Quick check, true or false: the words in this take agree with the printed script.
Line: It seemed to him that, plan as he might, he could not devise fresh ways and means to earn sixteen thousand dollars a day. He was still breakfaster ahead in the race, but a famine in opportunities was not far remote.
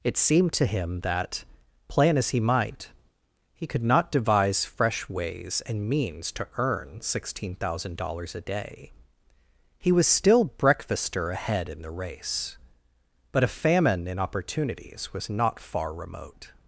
true